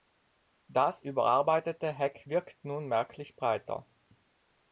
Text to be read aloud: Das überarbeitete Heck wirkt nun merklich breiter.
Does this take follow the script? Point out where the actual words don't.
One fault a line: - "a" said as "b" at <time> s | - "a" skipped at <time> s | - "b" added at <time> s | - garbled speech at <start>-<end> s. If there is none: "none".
none